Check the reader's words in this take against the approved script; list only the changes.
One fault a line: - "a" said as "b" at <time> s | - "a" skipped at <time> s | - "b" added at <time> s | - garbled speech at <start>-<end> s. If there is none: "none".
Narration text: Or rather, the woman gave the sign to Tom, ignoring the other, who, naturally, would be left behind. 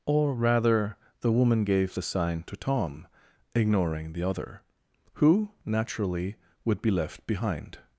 none